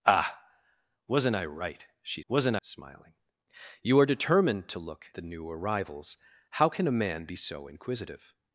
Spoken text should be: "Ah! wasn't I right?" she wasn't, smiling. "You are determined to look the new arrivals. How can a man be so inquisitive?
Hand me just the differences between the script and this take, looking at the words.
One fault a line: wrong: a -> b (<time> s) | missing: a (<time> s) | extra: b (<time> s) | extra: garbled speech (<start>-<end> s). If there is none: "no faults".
no faults